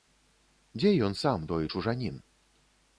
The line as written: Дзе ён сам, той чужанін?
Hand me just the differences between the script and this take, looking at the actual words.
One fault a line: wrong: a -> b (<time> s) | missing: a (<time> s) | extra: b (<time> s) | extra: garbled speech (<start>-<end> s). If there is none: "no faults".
no faults